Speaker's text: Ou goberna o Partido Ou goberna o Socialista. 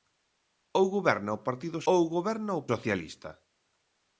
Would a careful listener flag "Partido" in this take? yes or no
no